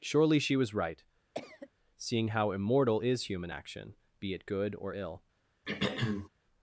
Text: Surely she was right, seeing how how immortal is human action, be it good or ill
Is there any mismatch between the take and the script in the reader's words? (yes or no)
yes